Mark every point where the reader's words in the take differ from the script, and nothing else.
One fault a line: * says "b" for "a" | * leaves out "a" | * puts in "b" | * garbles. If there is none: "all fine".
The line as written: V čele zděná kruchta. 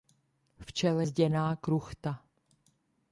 all fine